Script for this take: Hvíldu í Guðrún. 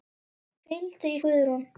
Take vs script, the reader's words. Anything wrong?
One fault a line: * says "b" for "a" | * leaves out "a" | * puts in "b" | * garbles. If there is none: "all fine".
all fine